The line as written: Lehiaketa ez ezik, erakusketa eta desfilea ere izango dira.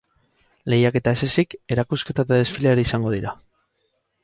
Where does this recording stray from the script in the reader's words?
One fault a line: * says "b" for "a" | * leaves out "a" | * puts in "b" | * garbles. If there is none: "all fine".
all fine